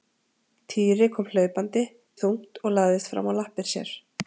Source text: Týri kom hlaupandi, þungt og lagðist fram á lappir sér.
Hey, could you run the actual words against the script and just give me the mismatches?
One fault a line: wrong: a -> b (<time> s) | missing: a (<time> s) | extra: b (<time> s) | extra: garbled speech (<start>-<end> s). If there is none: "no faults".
no faults